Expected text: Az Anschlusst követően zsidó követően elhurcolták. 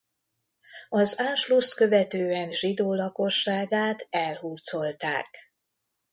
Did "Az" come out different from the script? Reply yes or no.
no